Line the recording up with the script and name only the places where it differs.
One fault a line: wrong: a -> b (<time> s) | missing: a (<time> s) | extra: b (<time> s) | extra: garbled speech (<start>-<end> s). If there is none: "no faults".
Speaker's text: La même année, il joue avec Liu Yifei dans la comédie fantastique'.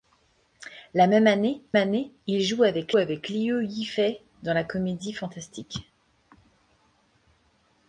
extra: année (1.8 s)
extra: avec (3.0 s)